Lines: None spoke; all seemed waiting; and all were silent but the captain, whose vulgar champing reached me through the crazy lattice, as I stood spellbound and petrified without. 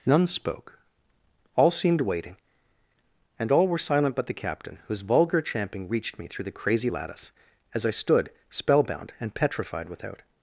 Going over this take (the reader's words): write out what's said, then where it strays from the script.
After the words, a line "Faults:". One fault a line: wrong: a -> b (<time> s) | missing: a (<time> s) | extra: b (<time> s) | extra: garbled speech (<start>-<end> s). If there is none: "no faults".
None spoke; all seemed waiting; and all were silent but the captain, whose vulgar champing reached me through the crazy lattice, as I stood spellbound and petrified without.
Faults:
no faults